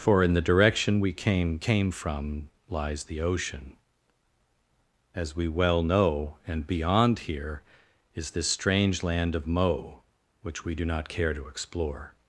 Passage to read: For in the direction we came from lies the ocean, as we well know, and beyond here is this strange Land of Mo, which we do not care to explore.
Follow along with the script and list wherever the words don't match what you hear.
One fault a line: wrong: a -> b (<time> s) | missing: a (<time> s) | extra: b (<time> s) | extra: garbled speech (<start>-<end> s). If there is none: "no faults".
extra: came (1.6 s)